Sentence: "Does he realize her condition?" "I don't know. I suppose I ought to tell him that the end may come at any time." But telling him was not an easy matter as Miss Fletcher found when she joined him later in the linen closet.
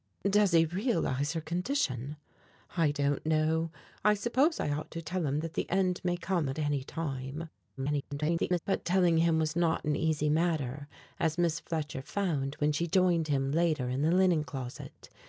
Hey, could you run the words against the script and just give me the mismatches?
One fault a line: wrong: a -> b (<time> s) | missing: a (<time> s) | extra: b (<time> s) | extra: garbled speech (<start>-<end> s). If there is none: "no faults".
extra: garbled speech (7.8-8.6 s)